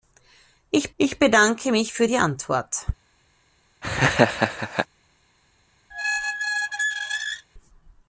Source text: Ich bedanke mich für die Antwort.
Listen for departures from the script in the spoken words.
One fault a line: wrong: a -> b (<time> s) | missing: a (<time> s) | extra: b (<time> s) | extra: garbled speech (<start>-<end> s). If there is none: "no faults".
extra: ich (1.0 s)